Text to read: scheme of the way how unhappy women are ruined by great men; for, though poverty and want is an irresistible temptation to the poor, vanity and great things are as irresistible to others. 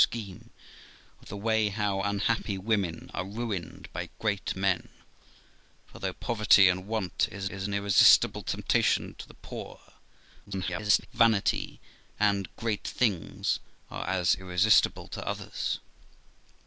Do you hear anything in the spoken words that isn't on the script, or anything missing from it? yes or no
yes